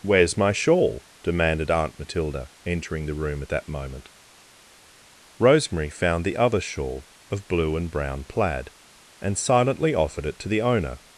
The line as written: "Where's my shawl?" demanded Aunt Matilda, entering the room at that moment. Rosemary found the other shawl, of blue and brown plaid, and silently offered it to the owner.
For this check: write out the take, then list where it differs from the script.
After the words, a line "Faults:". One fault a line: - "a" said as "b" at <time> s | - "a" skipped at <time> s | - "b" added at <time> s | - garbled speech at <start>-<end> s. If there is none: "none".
"Where's my shawl?" demanded Aunt Matilda, entering the room at that moment. Rosemary found the other shawl, of blue and brown plaid, and silently offered it to the owner.
Faults:
none